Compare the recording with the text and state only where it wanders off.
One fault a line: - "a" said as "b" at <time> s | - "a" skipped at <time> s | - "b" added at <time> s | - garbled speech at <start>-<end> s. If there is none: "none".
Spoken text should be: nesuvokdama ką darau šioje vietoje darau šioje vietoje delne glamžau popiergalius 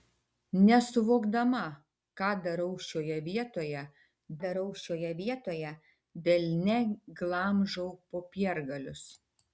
none